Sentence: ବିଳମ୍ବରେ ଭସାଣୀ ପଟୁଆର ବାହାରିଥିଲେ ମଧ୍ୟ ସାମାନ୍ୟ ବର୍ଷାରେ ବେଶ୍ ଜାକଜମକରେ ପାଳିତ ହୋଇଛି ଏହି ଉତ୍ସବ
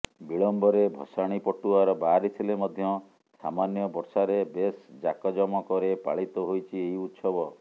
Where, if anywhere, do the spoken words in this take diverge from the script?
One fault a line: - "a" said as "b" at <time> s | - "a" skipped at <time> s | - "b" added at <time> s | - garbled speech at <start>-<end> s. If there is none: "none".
none